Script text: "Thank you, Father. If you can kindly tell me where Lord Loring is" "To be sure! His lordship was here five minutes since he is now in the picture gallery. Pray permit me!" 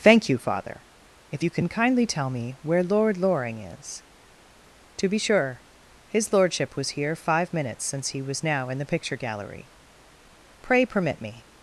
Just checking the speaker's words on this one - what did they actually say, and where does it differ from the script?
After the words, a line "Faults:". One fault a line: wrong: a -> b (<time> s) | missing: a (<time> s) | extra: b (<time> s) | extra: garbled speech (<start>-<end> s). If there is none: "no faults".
"Thank you, Father. If you can kindly tell me where Lord Loring is" "To be sure! His lordship was here five minutes since he was now in the picture gallery. Pray permit me!"
Faults:
wrong: is -> was (8.2 s)